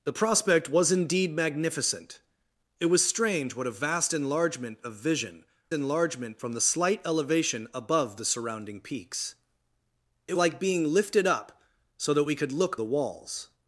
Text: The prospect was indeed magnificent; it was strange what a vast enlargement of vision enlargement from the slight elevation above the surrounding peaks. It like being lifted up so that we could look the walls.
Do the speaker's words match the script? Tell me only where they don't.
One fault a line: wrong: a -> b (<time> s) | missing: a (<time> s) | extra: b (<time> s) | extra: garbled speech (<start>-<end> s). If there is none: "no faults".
no faults